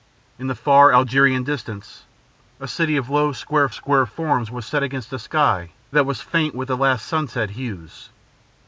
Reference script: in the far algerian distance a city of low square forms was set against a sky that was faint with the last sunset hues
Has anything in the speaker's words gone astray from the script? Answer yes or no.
yes